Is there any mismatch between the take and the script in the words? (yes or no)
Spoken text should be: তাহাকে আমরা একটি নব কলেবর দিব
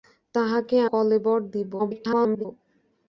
yes